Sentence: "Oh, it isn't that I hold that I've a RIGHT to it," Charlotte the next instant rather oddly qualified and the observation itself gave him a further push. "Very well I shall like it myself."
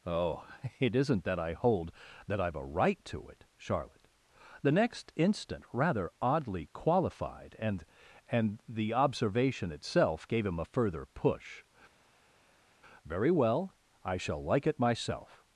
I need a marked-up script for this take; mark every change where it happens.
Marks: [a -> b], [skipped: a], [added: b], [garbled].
"Oh, it isn't that I hold that I've a RIGHT to it," Charlotte the next instant rather oddly qualified and [added: and] the observation itself gave him a further push. "Very well I shall like it myself."